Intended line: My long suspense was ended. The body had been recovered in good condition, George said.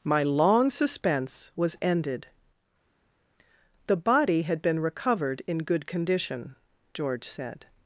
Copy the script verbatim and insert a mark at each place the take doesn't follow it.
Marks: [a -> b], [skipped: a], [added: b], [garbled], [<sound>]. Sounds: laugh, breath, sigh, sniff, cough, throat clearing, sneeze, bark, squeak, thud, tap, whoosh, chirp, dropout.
My long suspense was ended. The body had been recovered in good condition, George said.